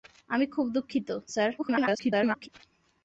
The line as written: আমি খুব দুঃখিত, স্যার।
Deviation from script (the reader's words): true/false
true